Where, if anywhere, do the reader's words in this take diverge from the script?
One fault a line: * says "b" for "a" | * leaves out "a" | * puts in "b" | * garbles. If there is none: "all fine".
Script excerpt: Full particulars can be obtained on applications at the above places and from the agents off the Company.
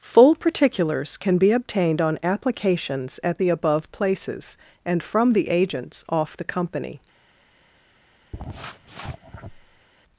all fine